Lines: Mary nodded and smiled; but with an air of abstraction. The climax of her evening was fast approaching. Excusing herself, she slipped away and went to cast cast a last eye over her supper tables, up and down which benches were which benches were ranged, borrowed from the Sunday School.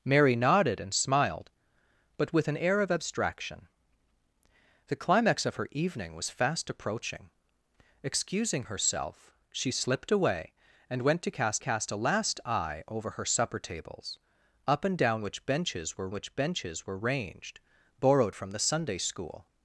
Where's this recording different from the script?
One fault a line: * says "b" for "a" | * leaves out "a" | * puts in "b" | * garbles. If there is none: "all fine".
all fine